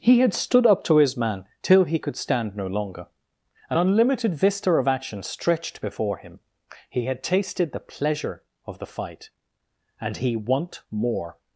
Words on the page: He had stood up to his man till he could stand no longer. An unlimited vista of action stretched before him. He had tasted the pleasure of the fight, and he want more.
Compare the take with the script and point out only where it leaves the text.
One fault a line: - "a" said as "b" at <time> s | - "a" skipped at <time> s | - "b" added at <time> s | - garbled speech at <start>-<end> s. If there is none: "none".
none